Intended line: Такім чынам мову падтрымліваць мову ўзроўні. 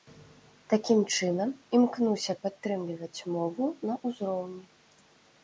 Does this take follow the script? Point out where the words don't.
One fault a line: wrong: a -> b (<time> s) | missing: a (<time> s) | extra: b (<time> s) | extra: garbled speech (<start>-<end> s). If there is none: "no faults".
wrong: мову -> імкнуся (1.8 s)
extra: на (3.9 s)